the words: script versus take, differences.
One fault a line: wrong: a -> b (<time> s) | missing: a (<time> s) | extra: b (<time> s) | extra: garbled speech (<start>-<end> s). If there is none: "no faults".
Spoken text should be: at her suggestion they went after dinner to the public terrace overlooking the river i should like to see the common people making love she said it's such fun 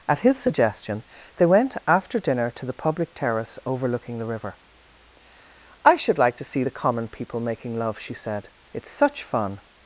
wrong: her -> his (0.2 s)